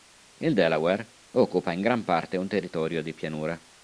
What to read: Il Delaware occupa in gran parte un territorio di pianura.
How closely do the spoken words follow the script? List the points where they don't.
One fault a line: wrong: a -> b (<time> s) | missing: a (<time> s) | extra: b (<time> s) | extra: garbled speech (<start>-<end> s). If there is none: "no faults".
no faults